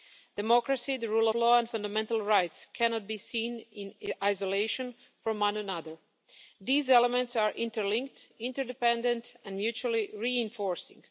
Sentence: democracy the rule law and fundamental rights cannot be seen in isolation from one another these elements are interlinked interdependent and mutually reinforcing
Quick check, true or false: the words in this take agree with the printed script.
true